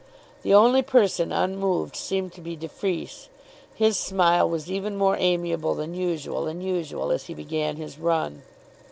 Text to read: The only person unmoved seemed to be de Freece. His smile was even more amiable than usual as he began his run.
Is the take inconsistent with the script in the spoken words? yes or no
yes